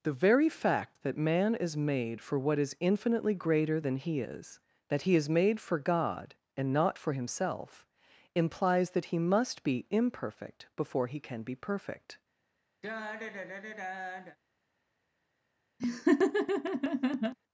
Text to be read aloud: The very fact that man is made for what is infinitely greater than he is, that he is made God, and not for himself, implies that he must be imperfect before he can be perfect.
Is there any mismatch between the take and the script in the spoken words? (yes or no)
yes